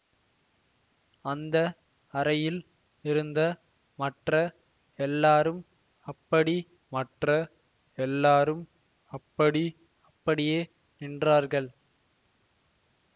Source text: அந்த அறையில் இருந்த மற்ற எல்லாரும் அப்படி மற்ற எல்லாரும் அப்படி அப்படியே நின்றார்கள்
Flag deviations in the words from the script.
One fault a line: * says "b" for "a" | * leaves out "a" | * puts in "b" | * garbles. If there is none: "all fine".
all fine